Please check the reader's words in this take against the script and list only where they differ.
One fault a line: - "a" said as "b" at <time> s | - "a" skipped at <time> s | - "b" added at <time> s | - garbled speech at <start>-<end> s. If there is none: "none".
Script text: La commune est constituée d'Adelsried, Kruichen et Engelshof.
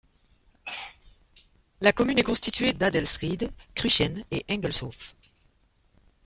none